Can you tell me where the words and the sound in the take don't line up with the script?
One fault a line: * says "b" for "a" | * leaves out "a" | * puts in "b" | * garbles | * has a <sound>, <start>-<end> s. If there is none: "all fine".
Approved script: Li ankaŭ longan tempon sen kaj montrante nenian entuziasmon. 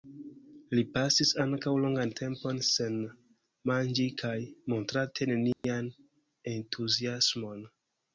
* puts in "pasis"
* puts in "manĝi"
* has a dropout, 5.5-5.6 s